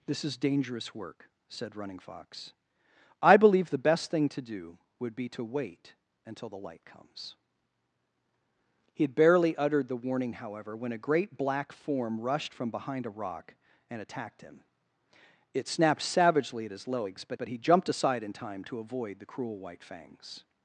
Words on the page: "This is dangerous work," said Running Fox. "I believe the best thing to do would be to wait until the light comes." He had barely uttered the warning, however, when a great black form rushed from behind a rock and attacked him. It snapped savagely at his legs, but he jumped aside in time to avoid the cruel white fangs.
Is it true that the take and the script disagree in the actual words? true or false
true